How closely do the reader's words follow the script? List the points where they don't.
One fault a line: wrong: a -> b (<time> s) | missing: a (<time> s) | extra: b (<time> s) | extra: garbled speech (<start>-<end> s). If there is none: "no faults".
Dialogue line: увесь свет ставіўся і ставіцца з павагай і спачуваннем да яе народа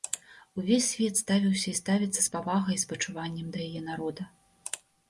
no faults